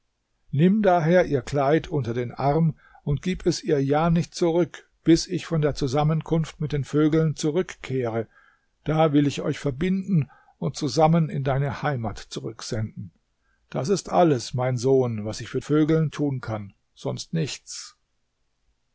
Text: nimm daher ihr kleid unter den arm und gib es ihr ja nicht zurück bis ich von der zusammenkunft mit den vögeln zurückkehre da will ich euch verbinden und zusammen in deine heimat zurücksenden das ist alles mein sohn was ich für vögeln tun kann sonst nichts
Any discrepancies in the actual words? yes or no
no